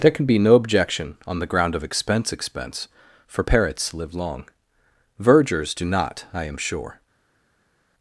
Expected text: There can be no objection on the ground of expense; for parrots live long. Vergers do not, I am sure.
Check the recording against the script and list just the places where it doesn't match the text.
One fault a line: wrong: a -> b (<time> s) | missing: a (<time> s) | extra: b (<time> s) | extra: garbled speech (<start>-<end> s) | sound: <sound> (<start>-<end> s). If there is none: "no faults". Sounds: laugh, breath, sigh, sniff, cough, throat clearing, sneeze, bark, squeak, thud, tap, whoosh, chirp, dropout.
extra: expense (2.3 s)